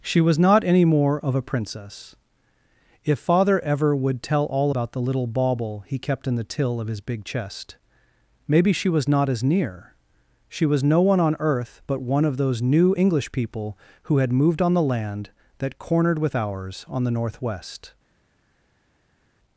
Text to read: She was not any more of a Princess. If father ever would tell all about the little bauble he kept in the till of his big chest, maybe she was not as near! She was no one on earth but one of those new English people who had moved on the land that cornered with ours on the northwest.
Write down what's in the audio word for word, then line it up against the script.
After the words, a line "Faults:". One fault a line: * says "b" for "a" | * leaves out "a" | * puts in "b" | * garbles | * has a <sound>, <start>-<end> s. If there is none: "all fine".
She was not any more of a Princess. If father ever would tell all about the little bauble he kept in the till of his big chest, maybe she was not as near! She was no one on earth but one of those new English people who had moved on the land that cornered with ours on the northwest.
Faults:
all fine